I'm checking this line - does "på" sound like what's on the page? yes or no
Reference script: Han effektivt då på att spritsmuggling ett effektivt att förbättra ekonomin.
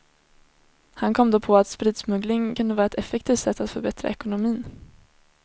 yes